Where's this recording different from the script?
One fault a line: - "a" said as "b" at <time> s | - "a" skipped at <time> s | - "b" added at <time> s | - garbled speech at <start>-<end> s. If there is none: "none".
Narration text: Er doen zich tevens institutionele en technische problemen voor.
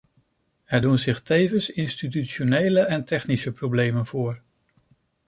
none